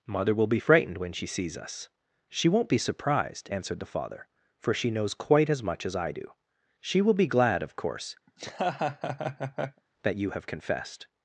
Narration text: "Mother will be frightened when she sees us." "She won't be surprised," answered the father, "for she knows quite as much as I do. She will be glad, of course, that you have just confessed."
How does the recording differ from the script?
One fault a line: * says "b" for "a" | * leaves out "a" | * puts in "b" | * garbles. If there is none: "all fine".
* leaves out "just"